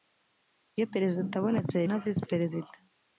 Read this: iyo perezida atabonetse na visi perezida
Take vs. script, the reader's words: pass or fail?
pass